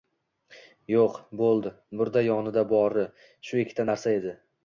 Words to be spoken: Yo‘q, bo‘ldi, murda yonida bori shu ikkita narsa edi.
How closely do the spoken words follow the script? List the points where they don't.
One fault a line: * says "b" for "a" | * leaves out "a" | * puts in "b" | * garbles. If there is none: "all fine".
all fine